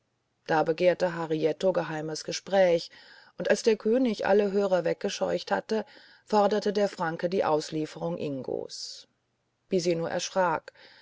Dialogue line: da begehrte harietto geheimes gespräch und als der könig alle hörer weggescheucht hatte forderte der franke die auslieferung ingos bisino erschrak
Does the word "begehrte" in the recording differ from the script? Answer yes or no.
no